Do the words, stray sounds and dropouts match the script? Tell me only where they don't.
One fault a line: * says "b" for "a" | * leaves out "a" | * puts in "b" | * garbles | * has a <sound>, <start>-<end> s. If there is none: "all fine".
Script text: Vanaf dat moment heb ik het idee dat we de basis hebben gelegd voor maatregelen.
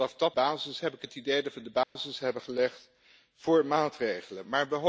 * says "basis" for "moment"
* has a dropout, 1.8-2.0 s